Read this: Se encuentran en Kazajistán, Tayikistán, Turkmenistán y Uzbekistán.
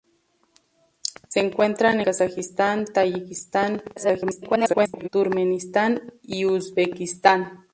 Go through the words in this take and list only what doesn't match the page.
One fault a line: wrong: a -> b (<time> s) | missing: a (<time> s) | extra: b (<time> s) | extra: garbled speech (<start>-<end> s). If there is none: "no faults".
missing: en (2.0 s)
extra: garbled speech (4.0-5.1 s)